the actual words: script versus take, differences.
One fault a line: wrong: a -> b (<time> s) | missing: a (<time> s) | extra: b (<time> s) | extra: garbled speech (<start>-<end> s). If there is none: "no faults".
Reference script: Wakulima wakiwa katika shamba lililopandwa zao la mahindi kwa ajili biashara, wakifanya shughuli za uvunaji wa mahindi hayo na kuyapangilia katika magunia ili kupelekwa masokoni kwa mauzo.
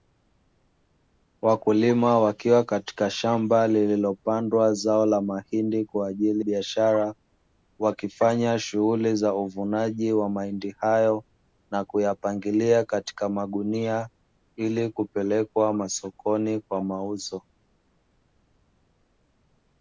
no faults